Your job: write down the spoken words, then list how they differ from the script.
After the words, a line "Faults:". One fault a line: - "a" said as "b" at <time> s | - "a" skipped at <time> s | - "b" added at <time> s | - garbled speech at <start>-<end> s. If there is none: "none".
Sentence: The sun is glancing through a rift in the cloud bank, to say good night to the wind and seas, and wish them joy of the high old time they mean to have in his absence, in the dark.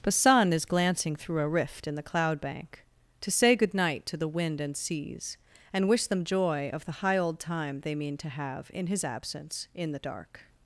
The sun is glancing through a rift in the cloud bank, to say good night to the wind and seas, and wish them joy of the high old time they mean to have in his absence, in the dark.
Faults:
none